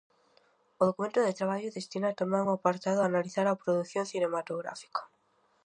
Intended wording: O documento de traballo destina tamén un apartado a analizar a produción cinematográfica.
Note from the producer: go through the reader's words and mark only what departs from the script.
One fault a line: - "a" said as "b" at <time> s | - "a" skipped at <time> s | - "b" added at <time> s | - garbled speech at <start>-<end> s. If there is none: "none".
none